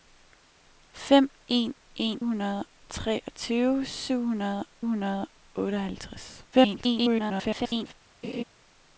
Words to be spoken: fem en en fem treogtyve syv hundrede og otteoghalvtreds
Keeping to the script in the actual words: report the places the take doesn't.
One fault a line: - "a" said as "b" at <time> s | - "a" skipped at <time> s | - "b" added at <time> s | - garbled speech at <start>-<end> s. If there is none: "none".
- "fem" said as "hundrede" at 2.2 s
- "hundrede" added at 4.8 s
- garbled speech at 6.5-7.9 s